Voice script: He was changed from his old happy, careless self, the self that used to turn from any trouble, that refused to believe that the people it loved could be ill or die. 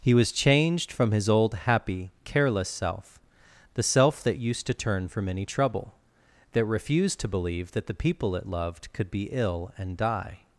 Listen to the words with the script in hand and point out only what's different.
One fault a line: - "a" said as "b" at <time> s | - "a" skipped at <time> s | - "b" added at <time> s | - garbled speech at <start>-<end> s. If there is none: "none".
- "or" said as "and" at 9.8 s